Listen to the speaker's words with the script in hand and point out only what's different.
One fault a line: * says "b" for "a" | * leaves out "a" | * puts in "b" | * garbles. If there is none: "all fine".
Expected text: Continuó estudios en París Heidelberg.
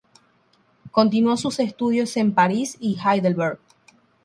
* puts in "sus"
* puts in "y"